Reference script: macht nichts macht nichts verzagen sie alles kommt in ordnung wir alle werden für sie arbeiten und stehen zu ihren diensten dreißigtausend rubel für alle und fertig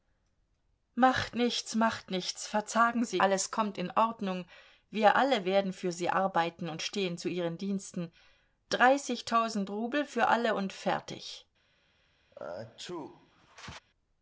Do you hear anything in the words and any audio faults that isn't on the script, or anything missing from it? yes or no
yes